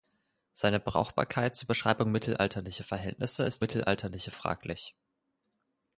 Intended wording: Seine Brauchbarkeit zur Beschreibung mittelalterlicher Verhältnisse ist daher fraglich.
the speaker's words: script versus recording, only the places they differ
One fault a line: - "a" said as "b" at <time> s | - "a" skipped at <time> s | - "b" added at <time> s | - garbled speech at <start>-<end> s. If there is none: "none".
- "daher" said as "mittelalterlicher" at 3.6 s